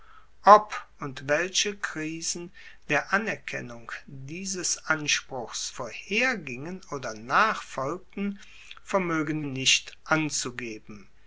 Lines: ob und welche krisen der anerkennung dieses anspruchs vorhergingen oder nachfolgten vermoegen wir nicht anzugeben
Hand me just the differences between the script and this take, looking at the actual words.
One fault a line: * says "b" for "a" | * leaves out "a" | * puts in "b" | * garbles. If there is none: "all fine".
* leaves out "wir"